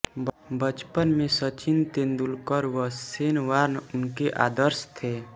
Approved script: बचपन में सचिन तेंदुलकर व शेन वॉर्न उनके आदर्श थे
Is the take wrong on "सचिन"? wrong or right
right